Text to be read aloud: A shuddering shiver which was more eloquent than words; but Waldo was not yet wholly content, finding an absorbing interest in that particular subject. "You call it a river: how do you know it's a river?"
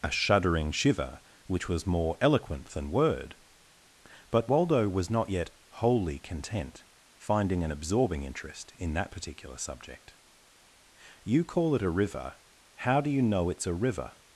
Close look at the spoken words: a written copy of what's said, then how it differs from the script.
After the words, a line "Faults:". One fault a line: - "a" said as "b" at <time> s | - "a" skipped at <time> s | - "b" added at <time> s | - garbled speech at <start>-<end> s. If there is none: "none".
A shuddering shiver which was more eloquent than word; but Waldo was not yet wholly content, finding an absorbing interest in that particular subject. "You call it a river: how do you know it's a river?"
Faults:
- "words" said as "word" at 2.9 s